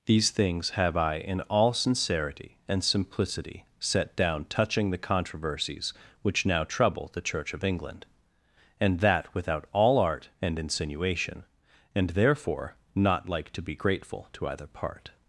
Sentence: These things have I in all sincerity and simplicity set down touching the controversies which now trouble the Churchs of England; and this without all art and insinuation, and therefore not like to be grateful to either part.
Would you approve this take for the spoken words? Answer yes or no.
no